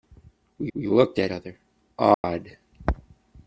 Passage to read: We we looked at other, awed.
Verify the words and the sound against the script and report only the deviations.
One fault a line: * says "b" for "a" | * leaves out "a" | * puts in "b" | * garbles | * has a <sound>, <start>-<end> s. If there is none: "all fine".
* has a dropout, 2.1-2.2 s